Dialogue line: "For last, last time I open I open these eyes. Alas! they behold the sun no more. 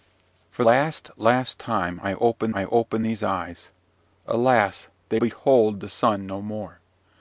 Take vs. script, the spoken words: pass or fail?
pass